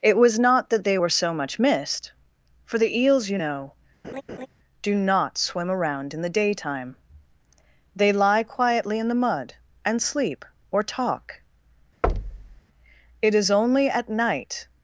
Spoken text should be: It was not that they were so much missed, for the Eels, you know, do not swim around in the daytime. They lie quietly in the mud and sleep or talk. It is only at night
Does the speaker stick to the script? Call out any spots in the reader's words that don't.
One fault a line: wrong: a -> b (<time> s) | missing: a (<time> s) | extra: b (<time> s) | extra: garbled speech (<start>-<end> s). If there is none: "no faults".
no faults